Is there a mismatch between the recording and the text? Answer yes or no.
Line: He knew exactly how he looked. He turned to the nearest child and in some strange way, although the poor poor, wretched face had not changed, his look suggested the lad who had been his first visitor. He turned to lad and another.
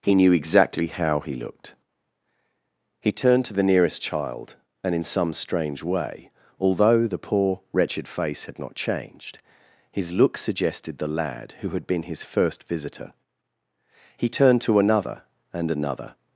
yes